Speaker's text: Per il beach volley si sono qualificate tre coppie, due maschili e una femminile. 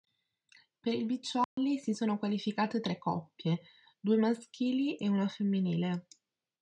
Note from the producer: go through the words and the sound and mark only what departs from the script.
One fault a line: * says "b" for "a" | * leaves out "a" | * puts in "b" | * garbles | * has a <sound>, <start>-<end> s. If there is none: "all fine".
* has a dropout, 1.4-1.6 s